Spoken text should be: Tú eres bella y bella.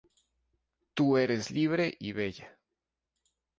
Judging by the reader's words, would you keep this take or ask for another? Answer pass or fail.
fail